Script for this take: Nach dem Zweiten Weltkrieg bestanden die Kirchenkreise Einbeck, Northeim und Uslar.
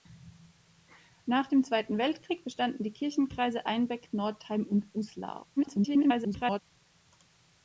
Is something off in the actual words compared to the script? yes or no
yes